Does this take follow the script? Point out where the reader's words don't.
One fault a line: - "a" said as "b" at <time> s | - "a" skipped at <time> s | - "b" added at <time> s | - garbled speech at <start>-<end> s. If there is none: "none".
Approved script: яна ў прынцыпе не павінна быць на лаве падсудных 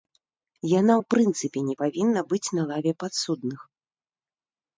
none